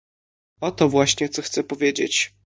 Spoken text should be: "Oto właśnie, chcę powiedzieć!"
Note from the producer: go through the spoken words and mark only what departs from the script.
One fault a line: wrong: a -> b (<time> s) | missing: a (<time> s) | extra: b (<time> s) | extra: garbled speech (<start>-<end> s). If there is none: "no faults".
extra: co (1.3 s)